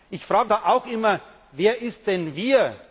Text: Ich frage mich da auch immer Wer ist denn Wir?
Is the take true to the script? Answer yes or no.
no